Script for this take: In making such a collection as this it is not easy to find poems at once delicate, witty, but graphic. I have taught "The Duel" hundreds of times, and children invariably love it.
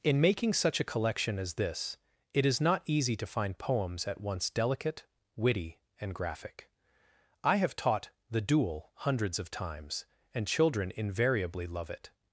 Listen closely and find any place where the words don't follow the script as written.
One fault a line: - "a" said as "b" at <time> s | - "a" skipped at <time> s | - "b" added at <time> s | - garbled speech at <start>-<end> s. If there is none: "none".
- "but" said as "and" at 6.0 s